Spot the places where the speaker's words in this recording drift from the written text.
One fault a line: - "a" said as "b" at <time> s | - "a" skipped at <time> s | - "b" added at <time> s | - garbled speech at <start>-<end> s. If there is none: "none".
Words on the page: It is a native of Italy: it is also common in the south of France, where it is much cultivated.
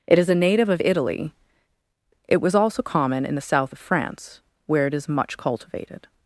- "is" said as "was" at 2.4 s